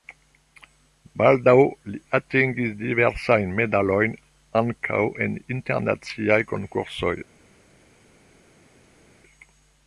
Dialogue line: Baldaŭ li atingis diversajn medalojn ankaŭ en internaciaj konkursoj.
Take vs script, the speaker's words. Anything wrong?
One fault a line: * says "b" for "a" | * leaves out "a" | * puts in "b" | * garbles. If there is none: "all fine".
all fine